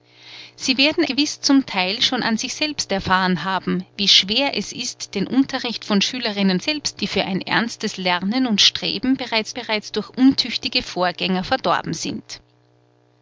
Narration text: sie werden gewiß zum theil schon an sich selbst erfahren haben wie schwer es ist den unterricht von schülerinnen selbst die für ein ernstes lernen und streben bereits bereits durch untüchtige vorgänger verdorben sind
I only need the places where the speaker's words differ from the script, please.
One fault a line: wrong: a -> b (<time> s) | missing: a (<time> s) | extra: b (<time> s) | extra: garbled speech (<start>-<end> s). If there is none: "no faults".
no faults